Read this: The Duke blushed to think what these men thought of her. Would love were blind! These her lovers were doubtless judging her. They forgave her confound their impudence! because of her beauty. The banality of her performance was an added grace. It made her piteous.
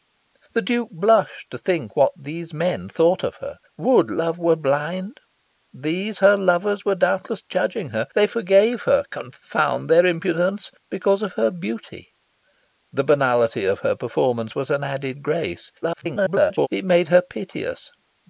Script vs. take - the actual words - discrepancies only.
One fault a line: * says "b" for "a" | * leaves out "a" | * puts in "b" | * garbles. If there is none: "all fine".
* garbles